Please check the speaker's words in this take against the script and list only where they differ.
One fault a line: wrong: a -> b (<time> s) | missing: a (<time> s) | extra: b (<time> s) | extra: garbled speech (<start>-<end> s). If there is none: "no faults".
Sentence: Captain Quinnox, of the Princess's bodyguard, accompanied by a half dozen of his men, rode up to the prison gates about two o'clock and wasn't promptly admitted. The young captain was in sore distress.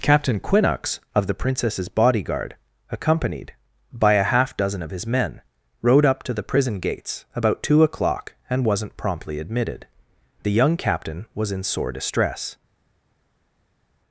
no faults